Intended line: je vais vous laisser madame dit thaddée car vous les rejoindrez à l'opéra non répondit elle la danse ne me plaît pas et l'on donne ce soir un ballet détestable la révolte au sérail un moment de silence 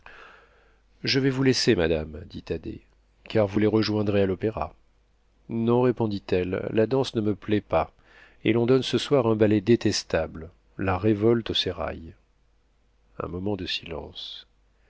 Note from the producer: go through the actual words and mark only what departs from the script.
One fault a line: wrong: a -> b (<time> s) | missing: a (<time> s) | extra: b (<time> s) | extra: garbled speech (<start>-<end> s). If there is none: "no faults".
no faults